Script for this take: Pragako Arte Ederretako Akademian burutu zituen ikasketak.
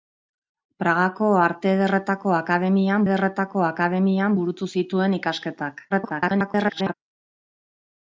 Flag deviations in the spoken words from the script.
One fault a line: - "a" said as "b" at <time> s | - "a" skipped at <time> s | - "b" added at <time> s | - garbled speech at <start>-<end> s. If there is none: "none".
- "Ederretako Akademian" added at 3.0 s
- garbled speech at 5.9-6.9 s